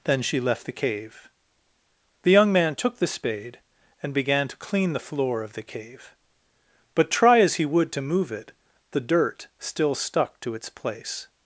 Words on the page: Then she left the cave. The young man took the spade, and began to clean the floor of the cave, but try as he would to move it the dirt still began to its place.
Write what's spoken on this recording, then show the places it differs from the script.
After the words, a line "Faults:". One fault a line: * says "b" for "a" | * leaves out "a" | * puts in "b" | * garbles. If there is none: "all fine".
Then she left the cave. The young man took the spade, and began to clean the floor of the cave, but try as he would to move it the dirt still stuck to its place.
Faults:
* says "stuck" for "began"